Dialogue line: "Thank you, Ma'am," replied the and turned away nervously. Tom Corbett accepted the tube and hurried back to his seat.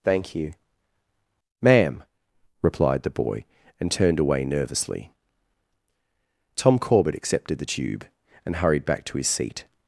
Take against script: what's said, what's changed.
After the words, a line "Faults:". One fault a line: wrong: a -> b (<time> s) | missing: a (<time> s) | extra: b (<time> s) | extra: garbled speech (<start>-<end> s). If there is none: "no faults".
"Thank you, Ma'am," replied the boy and turned away nervously. Tom Corbett accepted the tube and hurried back to his seat.
Faults:
extra: boy (3.1 s)